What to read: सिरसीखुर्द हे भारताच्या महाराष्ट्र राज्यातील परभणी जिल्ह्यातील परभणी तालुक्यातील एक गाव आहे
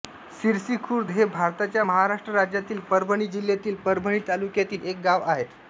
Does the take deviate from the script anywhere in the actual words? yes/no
no